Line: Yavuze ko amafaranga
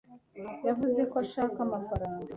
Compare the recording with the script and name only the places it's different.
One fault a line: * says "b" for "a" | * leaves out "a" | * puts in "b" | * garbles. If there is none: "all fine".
* puts in "ashaka"